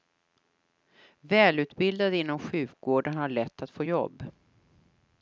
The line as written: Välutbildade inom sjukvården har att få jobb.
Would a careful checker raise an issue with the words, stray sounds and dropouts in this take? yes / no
yes